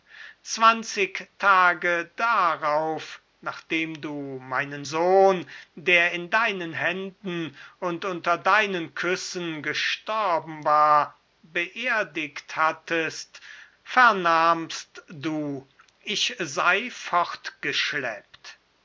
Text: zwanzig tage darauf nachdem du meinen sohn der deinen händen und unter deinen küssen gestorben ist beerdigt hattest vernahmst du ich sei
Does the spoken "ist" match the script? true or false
false